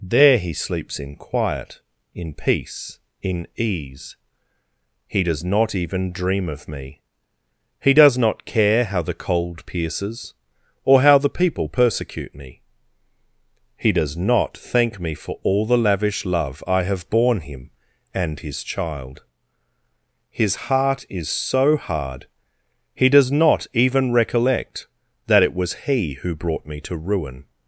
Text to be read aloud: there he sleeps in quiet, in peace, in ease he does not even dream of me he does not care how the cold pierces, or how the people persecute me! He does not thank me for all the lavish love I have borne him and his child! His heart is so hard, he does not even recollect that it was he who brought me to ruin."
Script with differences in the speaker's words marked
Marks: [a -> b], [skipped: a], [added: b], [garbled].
there he sleeps in quiet, in peace, in ease he does not even dream of me he does not care how the cold pierces, or how the people persecute me! He does not thank me for all the lavish love I have borne him and his child! His heart is so hard, he does not even recollect that it was he who brought me to ruin."